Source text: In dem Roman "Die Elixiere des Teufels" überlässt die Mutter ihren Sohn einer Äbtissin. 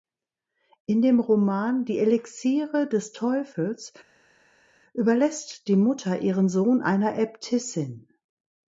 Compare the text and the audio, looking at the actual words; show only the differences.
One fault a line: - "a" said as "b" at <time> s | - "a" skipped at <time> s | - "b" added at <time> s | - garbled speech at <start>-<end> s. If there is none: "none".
none